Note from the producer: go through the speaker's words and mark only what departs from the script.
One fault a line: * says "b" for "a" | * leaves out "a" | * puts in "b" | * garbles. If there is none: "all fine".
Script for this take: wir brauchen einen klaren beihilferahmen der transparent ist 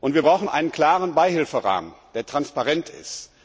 all fine